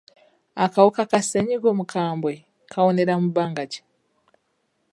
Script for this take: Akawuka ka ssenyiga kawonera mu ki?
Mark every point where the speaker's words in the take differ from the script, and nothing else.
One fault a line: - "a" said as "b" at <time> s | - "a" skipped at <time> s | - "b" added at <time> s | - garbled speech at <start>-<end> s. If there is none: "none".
- "omukambwe" added at 1.7 s
- "bbanga" added at 3.3 s